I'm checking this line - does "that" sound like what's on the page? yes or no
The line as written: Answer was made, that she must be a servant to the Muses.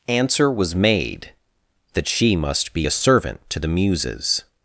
yes